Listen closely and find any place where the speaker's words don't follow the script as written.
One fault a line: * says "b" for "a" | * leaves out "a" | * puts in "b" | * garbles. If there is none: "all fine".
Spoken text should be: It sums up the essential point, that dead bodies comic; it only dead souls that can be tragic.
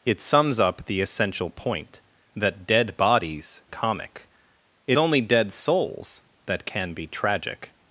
all fine